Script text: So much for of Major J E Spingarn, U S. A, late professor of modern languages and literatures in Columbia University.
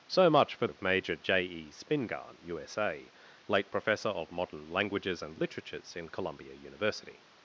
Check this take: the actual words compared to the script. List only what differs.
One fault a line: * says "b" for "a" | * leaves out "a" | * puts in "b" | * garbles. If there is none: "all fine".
all fine